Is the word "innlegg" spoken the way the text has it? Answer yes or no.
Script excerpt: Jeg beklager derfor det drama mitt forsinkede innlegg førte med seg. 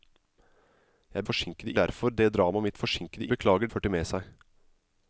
no